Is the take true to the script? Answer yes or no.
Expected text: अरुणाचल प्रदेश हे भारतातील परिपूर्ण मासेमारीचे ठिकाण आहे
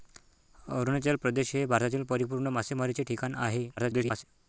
no